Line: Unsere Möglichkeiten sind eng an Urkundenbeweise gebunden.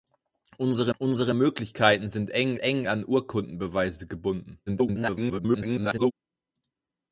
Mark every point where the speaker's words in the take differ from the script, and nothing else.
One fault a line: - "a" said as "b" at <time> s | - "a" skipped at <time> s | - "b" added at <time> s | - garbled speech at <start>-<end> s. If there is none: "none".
- "unsere" added at 1.0 s
- "eng" added at 2.6 s
- garbled speech at 4.7-6.1 s